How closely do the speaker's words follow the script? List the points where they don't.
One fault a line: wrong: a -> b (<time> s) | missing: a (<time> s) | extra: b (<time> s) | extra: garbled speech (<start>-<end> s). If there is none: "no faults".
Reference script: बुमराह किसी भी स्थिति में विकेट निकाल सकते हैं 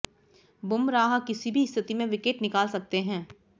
no faults